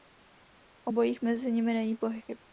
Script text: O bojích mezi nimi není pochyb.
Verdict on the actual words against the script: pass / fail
pass